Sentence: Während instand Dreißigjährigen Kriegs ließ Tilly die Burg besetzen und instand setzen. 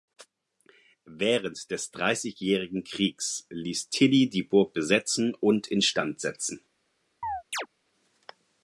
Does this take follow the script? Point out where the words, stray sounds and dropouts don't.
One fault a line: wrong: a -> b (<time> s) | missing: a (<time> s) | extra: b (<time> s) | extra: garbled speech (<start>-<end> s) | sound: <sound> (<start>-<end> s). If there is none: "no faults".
wrong: instand -> des (1.7 s)
sound: chirp (7.2-7.7 s)